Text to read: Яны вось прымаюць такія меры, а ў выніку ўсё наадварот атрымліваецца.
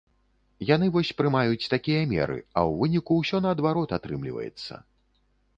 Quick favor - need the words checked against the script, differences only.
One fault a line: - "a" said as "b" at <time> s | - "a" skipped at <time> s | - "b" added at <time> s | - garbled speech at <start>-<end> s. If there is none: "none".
none